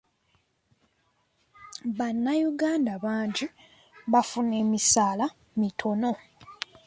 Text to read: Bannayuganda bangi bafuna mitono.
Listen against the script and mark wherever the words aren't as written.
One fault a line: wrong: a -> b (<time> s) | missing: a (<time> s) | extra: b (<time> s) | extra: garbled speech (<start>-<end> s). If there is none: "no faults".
extra: emisaala (4.6 s)